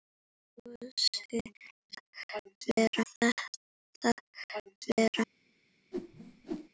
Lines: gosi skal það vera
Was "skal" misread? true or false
true